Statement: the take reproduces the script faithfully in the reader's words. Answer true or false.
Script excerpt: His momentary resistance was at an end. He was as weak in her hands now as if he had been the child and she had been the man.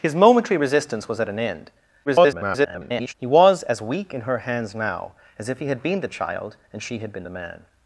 false